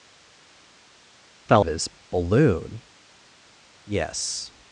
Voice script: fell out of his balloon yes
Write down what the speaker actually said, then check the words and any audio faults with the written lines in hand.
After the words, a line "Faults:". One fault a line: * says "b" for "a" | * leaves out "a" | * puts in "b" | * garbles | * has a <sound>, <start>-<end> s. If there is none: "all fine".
fell of his balloon yes
Faults:
* leaves out "out"